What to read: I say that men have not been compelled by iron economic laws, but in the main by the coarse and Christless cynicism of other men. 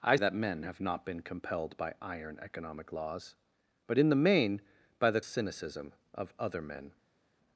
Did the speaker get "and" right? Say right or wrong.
wrong